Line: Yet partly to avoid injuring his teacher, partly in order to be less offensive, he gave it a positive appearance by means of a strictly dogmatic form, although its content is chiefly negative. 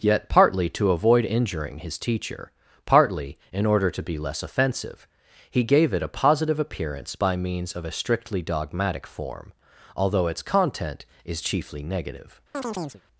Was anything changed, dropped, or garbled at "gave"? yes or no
no